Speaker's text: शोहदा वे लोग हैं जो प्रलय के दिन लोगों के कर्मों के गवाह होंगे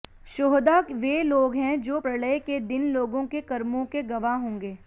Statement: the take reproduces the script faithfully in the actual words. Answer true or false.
true